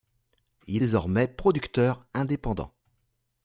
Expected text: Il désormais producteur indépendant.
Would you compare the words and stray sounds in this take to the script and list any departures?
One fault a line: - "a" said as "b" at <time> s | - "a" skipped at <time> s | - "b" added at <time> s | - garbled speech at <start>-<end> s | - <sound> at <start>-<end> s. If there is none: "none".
none